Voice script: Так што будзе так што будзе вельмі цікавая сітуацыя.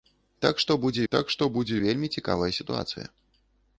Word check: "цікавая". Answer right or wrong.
right